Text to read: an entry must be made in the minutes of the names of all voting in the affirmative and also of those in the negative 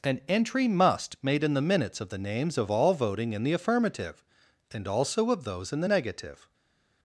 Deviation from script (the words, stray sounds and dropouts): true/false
true